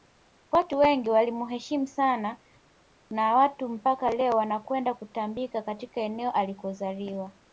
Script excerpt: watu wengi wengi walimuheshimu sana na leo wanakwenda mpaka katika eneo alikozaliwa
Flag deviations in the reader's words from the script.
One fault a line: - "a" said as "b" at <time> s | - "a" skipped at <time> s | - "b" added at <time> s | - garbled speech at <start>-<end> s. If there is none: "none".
- "wengi" skipped at 1.1 s
- "watu mpaka" added at 3.4 s
- "mpaka" said as "kutambika" at 4.9 s